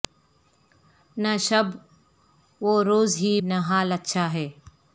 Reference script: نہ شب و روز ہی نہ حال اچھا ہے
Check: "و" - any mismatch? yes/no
no